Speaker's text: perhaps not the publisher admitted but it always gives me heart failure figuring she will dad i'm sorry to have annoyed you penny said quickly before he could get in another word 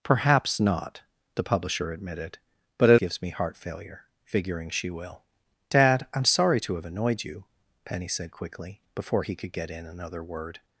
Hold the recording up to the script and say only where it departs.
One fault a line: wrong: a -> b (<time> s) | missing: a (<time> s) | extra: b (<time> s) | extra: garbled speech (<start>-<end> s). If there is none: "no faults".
missing: always (3.0 s)